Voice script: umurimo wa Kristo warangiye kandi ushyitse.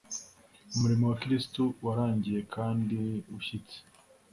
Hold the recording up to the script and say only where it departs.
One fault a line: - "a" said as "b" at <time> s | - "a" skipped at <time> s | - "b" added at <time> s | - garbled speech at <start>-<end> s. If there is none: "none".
none